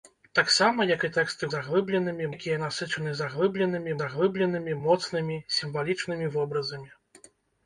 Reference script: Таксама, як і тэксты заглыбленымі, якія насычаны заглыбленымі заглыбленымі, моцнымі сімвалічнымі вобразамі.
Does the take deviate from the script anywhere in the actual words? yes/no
no